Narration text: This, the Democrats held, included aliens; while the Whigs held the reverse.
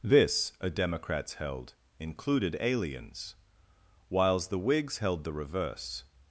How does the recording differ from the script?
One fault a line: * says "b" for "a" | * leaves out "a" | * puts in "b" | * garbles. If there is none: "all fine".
* says "a" for "the"
* says "whiles" for "while"